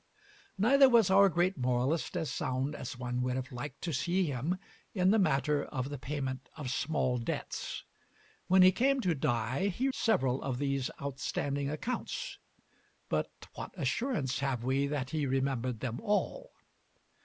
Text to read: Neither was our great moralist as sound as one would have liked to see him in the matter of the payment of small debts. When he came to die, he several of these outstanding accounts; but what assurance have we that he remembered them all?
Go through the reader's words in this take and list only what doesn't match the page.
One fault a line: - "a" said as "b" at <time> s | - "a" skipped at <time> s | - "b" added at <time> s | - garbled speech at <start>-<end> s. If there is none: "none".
none